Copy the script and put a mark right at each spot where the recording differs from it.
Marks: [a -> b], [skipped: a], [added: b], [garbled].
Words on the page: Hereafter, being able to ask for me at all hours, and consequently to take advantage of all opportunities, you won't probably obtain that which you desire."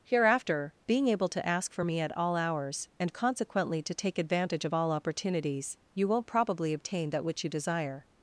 Hereafter, being able to ask for me at all hours, and consequently to take advantage of all opportunities, you won't probably obtain that which you desire."